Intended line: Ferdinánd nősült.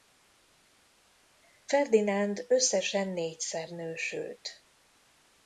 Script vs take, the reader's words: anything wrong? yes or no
yes